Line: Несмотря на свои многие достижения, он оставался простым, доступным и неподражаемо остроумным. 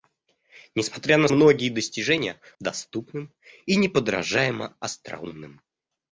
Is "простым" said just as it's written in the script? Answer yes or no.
no